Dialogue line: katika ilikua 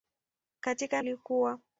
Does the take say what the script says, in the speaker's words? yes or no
yes